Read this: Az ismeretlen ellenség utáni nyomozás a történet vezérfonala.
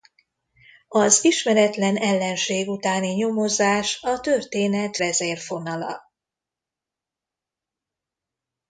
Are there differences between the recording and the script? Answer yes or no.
no